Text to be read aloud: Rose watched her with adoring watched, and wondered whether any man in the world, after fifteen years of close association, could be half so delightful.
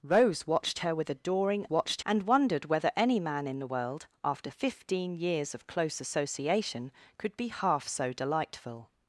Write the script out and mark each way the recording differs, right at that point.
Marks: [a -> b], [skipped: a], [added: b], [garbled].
Rose watched her with adoring watched, and wondered whether any man in the world, after fifteen years of close association, could be half so delightful.